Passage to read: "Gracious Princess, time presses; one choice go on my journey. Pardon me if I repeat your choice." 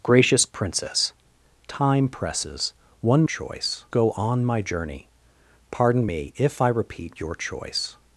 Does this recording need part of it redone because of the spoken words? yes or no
no